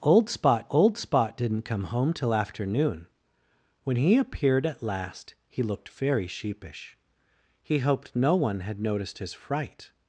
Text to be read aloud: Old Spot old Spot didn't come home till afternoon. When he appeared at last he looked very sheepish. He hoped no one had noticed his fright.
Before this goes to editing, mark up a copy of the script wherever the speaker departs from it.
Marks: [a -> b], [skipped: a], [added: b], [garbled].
Old Spot old Spot didn't come home till afternoon. When he appeared at last he looked very sheepish. He hoped no one had noticed his fright.